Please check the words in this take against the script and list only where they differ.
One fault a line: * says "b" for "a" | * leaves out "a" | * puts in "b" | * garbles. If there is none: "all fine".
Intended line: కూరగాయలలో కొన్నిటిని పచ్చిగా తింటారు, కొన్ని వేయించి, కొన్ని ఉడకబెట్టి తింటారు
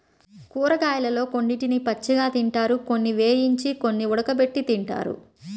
all fine